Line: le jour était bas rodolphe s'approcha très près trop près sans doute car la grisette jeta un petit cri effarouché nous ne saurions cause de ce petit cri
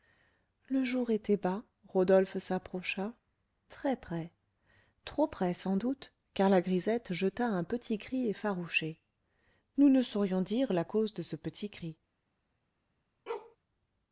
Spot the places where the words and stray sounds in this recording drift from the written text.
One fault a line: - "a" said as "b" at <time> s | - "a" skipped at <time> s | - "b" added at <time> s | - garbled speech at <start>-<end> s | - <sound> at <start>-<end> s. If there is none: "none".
- "dire la" added at 10.4 s
- bark at 13.3-13.6 s